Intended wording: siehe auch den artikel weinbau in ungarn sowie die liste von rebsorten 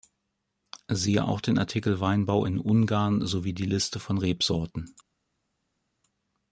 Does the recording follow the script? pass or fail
pass